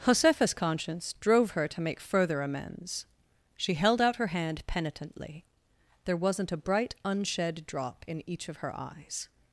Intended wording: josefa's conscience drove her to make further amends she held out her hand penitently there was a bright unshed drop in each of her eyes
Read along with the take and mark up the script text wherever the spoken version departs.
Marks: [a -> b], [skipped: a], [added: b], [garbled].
josefa's conscience drove her to make further amends she held out her hand penitently there [was -> wasn't] a bright unshed drop in each of her eyes